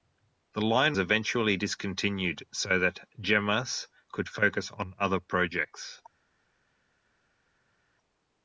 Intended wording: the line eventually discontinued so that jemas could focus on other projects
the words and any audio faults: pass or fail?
pass